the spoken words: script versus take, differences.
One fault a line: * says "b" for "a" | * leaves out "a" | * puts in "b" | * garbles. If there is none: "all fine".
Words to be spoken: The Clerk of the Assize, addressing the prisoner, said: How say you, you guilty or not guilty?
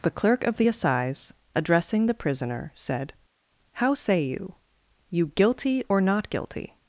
all fine